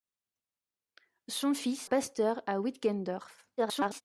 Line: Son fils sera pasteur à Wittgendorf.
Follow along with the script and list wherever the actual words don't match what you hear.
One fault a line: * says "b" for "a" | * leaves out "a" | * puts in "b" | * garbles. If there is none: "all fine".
* leaves out "sera"
* garbles